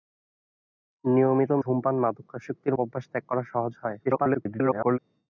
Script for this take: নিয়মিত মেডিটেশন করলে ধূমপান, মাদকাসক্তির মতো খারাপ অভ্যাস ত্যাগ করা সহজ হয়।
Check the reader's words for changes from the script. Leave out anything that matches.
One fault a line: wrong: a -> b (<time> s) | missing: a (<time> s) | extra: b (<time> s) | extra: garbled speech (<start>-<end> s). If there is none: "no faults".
missing: মেডিটেশন করলে (1.5 s)
missing: মতো খারাপ (2.7 s)
extra: garbled speech (4.0-5.0 s)